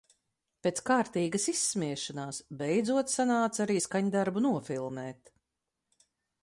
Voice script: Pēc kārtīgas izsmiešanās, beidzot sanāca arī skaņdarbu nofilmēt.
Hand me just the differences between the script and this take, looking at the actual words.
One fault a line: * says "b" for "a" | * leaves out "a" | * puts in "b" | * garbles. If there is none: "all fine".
all fine